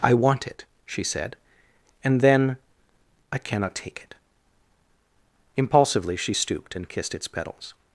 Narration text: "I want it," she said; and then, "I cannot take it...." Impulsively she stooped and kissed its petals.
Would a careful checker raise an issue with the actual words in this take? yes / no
no